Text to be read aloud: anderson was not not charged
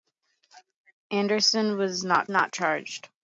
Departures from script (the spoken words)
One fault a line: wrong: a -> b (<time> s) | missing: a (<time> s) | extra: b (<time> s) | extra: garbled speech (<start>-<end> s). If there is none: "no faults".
no faults